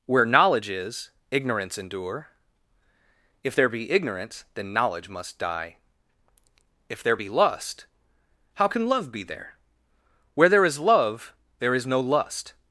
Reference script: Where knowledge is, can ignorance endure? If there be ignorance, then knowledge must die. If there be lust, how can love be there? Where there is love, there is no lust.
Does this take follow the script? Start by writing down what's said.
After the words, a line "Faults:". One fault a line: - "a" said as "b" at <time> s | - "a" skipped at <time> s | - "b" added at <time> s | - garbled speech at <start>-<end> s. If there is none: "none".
Where knowledge is, ignorance endure? If there be ignorance, then knowledge must die. If there be lust, how can love be there? Where there is love, there is no lust.
Faults:
- "can" skipped at 1.1 s